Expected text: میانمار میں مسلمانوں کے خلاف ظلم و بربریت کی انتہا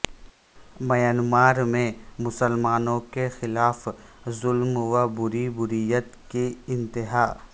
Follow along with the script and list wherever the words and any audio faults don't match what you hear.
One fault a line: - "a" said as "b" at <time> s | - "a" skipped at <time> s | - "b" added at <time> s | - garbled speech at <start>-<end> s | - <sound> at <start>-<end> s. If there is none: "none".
none